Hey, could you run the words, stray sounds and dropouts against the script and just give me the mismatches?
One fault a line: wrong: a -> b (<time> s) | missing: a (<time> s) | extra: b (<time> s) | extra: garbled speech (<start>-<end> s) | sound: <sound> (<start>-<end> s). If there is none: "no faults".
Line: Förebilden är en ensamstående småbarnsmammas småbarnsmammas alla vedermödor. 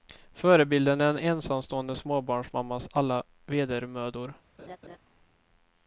missing: småbarnsmammas (2.9 s)
sound: laugh (4.6-5.0 s)